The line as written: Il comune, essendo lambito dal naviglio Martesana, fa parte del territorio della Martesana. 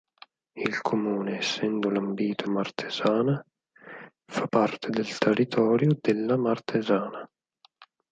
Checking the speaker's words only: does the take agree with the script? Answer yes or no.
no